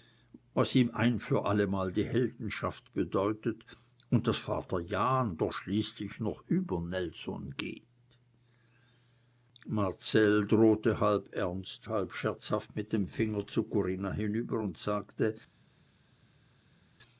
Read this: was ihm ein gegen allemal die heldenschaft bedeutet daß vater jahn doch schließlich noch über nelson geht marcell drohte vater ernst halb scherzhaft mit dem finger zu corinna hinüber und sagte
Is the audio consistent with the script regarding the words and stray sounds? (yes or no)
no